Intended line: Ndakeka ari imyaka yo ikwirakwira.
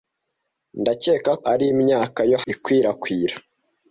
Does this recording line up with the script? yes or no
yes